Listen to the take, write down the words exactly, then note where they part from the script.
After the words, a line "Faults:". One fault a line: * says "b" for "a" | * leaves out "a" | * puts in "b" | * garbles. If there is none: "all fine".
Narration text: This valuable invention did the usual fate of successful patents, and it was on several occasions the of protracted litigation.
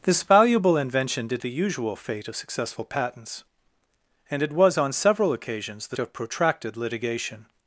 This valuable invention did the usual fate of successful patents, and it was on several occasions the of protracted litigation.
Faults:
all fine